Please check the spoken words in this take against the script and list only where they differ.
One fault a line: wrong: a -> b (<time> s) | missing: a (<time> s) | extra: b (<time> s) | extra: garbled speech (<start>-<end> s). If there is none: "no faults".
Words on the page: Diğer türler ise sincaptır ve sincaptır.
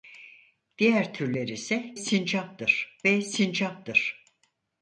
no faults